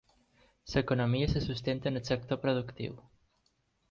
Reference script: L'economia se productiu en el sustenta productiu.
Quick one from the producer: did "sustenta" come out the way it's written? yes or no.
no